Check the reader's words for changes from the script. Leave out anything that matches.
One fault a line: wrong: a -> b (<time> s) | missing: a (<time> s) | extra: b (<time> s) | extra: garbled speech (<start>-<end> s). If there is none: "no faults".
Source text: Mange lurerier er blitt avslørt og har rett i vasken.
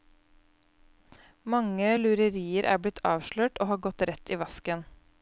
extra: gått (3.9 s)